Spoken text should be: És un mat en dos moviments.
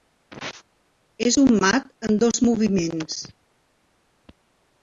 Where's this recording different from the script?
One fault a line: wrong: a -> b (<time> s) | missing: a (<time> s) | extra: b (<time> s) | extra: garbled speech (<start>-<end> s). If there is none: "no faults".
no faults